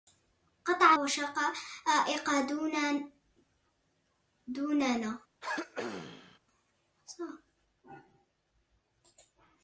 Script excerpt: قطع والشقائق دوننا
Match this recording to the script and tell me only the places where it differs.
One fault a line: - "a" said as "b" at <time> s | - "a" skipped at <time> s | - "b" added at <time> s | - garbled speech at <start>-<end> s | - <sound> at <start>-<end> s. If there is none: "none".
- throat clearing at 5.4-6.4 s